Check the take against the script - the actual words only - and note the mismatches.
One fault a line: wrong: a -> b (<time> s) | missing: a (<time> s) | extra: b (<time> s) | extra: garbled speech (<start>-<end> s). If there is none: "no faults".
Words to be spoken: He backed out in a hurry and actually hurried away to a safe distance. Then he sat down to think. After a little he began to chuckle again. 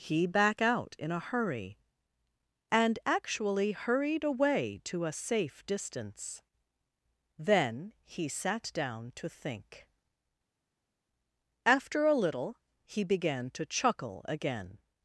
wrong: backed -> back (0.2 s)